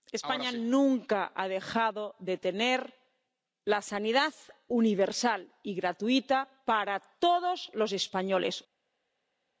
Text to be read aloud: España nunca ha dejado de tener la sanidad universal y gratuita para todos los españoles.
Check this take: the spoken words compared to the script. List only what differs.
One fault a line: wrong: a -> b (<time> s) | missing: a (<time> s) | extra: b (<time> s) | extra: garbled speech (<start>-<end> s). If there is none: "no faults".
no faults